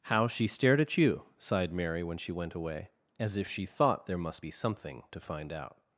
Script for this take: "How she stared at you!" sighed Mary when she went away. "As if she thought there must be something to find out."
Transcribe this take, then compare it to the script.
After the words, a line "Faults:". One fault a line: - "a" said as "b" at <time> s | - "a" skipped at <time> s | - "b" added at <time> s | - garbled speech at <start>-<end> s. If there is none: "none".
"How she stared at you!" sighed Mary when she went away. "As if she thought there must be something to find out."
Faults:
none